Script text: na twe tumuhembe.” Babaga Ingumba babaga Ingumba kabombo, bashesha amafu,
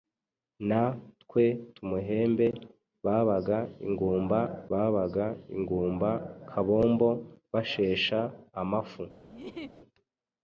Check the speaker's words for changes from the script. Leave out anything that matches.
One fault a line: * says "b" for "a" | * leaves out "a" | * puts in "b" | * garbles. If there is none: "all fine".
all fine